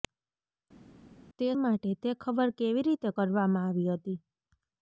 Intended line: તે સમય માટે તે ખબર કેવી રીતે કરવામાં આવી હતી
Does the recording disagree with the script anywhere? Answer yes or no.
yes